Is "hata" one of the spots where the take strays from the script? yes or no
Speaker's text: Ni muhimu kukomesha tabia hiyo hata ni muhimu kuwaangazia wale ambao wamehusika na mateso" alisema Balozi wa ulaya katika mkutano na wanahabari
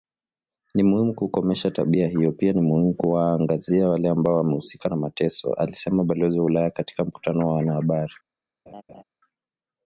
yes